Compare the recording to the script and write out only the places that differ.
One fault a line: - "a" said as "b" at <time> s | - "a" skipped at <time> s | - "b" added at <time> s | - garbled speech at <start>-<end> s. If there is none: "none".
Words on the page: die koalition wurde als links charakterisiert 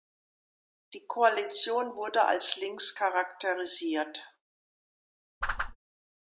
none